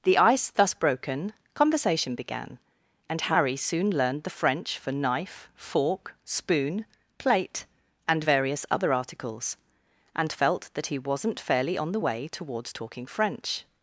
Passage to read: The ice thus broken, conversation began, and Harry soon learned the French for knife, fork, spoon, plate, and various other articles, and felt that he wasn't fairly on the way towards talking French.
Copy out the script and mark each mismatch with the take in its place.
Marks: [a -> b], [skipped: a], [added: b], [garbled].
The ice thus broken, conversation began, and Harry soon learned the French for knife, fork, spoon, plate, and various other articles, and felt that he wasn't fairly on the way towards talking French.